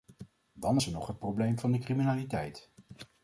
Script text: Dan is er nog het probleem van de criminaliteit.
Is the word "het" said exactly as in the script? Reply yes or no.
yes